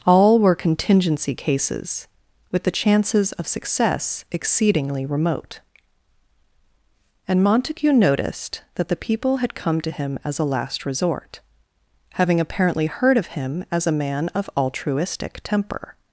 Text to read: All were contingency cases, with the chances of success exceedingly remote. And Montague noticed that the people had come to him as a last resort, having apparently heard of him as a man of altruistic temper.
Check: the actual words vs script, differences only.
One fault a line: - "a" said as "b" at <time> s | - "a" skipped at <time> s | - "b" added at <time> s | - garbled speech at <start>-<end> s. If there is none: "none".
none